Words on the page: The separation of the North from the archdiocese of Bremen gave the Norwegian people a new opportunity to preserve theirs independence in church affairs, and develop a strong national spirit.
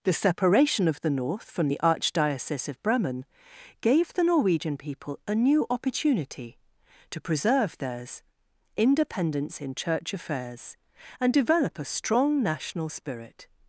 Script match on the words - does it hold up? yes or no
yes